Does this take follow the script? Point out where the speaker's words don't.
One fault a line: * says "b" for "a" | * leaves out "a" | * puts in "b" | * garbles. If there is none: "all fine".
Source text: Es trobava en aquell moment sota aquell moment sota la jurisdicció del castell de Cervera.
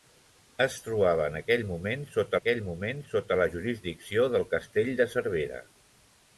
all fine